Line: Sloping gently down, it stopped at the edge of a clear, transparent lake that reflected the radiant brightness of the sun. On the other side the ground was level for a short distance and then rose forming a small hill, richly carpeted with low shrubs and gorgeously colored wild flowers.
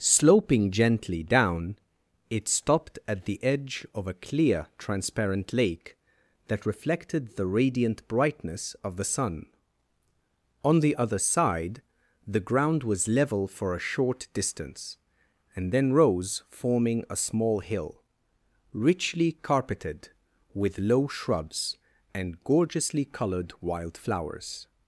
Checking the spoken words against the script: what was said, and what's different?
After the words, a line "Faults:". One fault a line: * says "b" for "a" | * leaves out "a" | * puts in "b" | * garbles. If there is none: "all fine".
Sloping gently down, it stopped at the edge of a clear, transparent lake that reflected the radiant brightness of the sun. On the other side the ground was level for a short distance and then rose forming a small hill, richly carpeted with low shrubs and gorgeously colored wild flowers.
Faults:
all fine